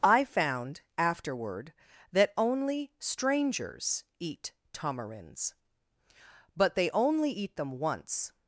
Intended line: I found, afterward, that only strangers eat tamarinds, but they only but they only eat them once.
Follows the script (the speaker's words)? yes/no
no